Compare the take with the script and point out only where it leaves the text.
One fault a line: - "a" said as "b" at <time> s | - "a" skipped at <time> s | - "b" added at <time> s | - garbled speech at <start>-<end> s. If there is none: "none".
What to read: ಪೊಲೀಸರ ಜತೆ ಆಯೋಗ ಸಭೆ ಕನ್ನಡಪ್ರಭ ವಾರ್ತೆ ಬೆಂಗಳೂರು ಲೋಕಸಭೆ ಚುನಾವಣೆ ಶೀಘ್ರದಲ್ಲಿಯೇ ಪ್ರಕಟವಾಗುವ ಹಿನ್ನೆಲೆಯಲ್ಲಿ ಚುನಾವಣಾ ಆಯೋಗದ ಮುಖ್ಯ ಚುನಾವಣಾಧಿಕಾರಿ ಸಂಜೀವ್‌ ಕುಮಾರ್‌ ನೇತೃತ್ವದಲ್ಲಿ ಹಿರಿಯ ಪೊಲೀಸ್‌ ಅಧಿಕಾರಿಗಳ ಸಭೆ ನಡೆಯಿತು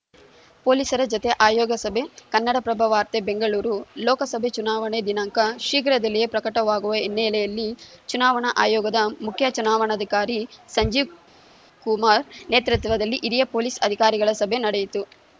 - "ದಿನಾಂಕ" added at 5.0 s